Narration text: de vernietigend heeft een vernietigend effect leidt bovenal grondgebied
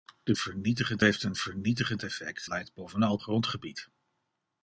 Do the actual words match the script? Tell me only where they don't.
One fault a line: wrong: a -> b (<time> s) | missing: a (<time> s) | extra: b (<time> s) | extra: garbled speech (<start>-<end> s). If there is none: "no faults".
no faults